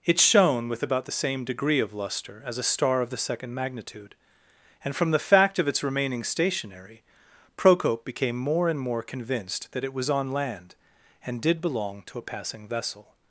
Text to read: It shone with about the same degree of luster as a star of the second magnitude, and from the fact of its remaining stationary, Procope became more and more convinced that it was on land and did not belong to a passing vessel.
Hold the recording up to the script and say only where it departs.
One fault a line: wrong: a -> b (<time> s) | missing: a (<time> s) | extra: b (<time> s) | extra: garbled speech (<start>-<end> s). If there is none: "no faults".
missing: not (11.6 s)